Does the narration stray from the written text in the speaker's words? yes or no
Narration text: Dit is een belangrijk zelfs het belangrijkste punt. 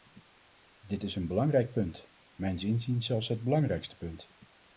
yes